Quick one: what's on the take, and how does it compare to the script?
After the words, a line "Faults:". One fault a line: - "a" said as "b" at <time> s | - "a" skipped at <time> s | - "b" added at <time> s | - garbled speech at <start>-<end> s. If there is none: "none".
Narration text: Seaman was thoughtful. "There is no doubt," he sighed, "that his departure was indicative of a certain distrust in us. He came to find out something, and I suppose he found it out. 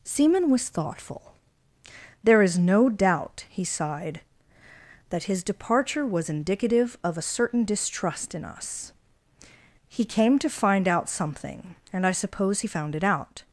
Seaman was thoughtful. "There is no doubt," he sighed, "that his departure was indicative of a certain distrust in us. He came to find out something, and I suppose he found it out.
Faults:
none